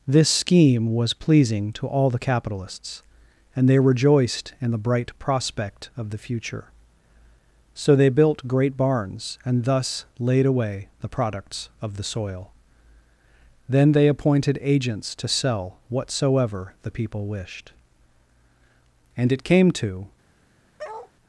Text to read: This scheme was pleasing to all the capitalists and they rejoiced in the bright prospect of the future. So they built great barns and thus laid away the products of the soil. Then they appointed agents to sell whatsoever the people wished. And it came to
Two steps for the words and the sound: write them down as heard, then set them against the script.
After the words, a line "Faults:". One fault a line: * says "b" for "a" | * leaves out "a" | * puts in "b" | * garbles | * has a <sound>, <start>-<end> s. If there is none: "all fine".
This scheme was pleasing to all the capitalists and they rejoiced in the bright prospect of the future. So they built great barns and thus laid away the products of the soil. Then they appointed agents to sell whatsoever the people wished. And it came to
Faults:
* has a bark, 20.8-21.1 s